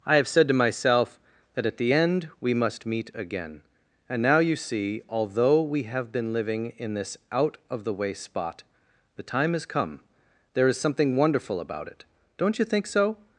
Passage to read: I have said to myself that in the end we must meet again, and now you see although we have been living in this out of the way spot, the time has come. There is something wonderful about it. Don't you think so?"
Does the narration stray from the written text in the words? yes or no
yes